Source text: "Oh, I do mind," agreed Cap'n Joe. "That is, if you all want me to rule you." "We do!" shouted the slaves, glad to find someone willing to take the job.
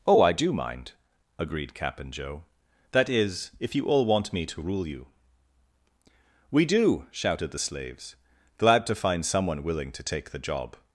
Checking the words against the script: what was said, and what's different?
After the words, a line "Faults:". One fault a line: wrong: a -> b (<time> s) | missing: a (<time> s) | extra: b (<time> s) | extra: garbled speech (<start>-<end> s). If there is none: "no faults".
"Oh, I do mind," agreed Cap'n Joe. "That is, if you all want me to rule you." "We do!" shouted the slaves, glad to find someone willing to take the job.
Faults:
no faults